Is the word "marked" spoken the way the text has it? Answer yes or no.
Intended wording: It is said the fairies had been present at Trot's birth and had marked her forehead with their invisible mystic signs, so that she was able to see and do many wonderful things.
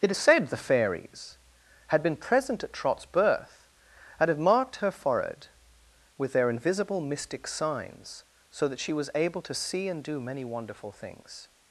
yes